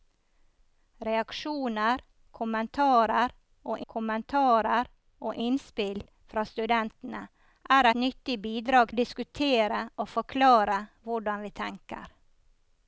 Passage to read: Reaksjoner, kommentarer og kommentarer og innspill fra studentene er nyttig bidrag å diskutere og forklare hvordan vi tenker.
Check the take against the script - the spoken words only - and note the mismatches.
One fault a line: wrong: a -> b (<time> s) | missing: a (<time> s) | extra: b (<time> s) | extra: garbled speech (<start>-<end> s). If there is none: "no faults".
no faults